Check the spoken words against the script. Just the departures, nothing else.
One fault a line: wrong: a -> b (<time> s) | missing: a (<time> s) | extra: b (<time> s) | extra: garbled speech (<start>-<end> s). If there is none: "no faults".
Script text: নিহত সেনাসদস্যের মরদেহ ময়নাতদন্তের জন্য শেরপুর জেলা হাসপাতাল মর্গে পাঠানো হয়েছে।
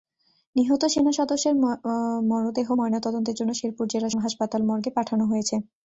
no faults